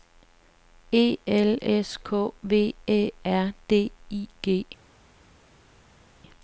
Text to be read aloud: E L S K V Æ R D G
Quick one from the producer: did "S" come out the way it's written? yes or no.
yes